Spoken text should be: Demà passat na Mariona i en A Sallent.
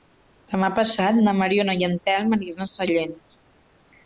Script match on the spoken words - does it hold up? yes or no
no